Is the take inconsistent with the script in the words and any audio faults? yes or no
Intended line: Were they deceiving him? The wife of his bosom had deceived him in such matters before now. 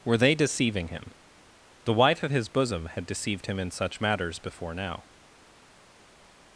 no